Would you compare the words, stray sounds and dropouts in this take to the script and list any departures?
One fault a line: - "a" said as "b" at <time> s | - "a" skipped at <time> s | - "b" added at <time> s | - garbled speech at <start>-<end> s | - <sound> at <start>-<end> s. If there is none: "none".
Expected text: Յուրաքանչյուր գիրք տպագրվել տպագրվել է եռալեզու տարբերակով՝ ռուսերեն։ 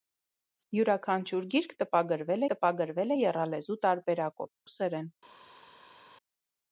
none